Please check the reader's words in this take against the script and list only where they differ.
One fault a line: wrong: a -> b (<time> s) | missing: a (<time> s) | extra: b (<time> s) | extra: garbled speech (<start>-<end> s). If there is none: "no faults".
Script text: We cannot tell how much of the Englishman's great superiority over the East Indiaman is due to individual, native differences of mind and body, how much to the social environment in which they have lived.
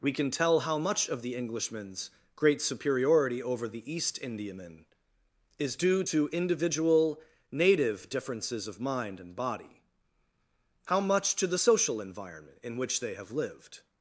wrong: cannot -> can (0.1 s)